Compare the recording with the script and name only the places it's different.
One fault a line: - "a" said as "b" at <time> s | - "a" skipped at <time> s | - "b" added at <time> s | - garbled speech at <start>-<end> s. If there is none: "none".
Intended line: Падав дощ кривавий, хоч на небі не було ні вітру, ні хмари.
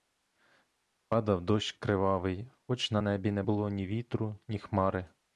none